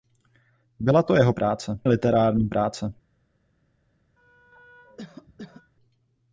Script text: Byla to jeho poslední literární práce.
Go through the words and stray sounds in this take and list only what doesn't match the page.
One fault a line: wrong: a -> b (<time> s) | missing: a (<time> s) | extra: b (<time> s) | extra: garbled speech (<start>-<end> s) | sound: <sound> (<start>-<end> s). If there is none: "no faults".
wrong: poslední -> práce (1.3 s)
sound: cough (4.2-5.7 s)